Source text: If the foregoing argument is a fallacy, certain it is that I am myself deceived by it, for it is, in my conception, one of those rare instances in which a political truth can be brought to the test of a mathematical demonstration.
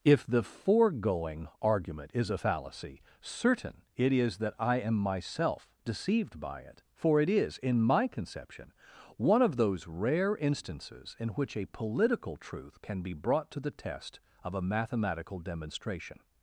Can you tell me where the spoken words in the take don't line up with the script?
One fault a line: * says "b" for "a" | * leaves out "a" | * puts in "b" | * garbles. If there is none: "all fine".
all fine